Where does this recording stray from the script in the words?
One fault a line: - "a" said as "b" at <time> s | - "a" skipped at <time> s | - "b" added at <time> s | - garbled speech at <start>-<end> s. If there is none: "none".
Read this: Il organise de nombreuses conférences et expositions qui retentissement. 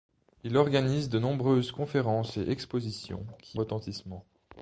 none